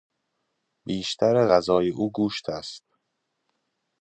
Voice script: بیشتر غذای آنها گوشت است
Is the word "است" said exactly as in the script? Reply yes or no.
yes